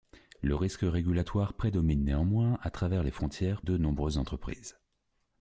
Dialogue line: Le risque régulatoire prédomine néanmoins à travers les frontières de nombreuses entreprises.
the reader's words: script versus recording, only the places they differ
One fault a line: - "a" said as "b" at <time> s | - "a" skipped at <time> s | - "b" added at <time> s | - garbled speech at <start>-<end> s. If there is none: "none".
none